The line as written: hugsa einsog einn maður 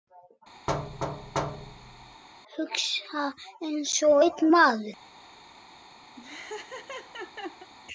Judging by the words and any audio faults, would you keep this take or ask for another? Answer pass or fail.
fail